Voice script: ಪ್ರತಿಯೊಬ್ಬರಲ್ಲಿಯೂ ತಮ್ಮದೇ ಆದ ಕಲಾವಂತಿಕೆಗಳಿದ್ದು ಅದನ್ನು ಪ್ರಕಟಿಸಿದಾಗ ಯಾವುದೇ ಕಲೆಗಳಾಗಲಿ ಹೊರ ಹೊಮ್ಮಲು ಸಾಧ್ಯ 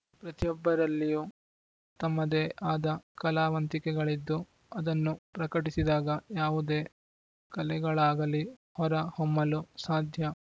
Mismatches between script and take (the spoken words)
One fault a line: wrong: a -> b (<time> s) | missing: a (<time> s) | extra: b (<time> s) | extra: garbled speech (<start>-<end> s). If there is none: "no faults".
no faults